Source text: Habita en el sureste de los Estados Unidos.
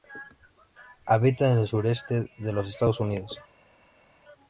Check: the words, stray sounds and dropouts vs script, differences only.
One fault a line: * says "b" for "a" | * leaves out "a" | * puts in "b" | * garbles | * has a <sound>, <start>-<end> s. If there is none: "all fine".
all fine